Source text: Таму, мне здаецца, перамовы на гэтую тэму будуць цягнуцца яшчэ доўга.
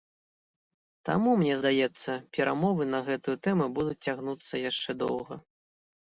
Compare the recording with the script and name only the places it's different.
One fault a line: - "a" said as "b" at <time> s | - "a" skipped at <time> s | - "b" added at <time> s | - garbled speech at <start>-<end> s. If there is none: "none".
none